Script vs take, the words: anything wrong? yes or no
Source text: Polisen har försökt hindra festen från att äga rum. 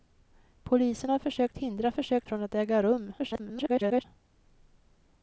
yes